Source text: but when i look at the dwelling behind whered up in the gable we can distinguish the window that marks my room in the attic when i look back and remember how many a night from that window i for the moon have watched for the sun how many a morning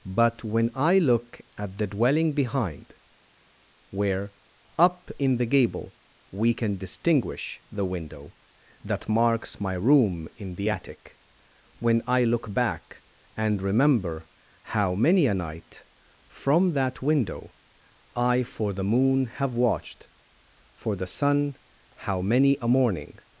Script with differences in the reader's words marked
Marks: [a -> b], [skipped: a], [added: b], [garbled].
but when i look at the dwelling behind [whered -> where] up in the gable we can distinguish the window that marks my room in the attic when i look back and remember how many a night from that window i for the moon have watched for the sun how many a morning